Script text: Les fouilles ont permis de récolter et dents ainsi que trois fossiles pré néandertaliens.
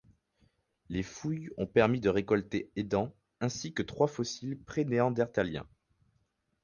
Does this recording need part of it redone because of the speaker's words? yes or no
no